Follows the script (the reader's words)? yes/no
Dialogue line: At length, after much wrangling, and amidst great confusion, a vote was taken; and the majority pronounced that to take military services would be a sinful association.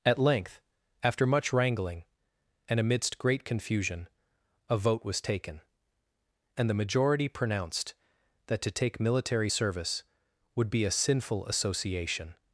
no